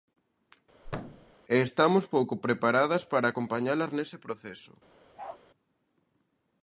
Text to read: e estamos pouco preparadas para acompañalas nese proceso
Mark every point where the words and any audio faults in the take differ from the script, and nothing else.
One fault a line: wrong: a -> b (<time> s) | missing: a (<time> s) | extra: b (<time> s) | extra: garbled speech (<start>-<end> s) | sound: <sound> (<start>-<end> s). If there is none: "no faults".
sound: thud (0.8-1.3 s)
sound: bark (5.2-5.4 s)